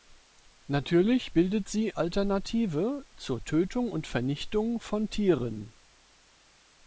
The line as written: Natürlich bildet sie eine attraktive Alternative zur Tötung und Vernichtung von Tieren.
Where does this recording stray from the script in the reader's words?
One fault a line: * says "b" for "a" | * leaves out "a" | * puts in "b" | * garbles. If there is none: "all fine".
* leaves out "eine attraktive"